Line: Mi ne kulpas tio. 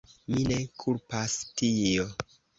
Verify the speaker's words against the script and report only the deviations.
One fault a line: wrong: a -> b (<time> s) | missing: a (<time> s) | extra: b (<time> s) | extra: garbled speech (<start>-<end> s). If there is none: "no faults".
no faults